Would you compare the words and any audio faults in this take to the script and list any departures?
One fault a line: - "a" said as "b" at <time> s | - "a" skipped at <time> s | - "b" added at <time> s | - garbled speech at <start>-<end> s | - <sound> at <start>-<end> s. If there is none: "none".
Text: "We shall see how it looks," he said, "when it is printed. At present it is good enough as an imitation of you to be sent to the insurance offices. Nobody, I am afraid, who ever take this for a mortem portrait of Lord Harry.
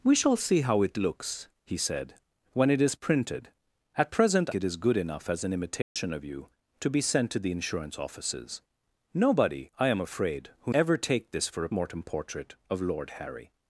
- dropout at 5.8-6.0 s